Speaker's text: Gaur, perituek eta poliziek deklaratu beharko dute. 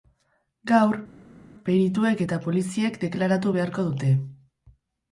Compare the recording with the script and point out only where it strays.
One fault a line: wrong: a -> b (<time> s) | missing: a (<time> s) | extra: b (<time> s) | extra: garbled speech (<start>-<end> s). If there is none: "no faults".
no faults